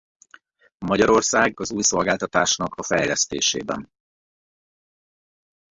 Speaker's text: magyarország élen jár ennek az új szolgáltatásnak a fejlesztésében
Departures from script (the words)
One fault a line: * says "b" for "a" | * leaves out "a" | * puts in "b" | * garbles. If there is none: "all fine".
* leaves out "élen jár ennek"